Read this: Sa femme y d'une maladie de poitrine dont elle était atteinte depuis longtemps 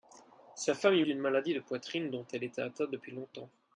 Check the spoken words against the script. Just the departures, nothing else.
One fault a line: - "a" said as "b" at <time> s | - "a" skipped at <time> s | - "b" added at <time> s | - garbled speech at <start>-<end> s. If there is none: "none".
none